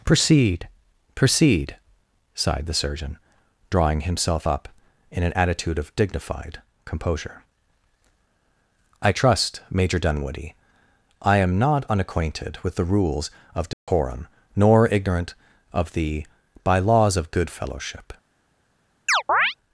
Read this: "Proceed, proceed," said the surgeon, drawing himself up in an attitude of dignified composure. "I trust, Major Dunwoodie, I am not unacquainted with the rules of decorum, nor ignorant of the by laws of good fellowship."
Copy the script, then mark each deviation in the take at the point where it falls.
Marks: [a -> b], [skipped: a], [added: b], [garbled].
"Proceed, proceed," [said -> sighed] the surgeon, drawing himself up in an attitude of dignified composure. "I trust, Major Dunwoodie, I am not unacquainted with the rules of decorum, nor ignorant of the by laws of good fellowship."